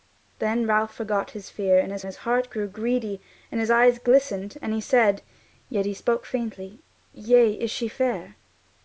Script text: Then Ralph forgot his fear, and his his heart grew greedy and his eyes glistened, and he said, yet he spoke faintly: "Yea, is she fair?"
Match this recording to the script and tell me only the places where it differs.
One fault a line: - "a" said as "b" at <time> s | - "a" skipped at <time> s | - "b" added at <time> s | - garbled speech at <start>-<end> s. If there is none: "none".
none